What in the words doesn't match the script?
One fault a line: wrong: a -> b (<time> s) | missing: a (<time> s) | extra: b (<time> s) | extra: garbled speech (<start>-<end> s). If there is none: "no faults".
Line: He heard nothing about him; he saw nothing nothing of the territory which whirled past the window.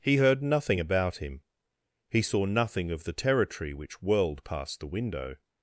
missing: nothing (2.9 s)